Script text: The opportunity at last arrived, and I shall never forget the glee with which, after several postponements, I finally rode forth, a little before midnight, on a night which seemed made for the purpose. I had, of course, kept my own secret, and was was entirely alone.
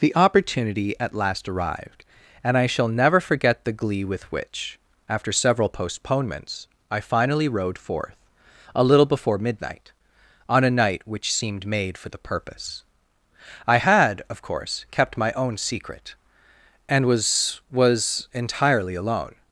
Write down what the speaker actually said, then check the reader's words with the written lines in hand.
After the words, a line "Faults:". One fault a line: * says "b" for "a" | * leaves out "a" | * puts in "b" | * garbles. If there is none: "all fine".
The opportunity at last arrived, and I shall never forget the glee with which, after several postponements, I finally rode forth, a little before midnight, on a night which seemed made for the purpose. I had, of course, kept my own secret, and was was entirely alone.
Faults:
all fine